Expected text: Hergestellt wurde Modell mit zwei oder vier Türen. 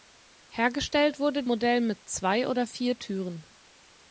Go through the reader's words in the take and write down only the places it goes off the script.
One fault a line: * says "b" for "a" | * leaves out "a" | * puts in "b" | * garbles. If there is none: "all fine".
all fine